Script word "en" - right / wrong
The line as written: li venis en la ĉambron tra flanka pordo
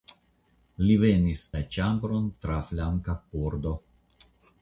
wrong